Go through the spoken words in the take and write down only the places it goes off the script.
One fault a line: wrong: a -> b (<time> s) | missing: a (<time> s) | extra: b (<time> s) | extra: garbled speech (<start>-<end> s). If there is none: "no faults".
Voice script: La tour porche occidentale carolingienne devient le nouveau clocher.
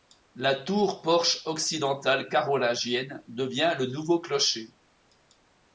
no faults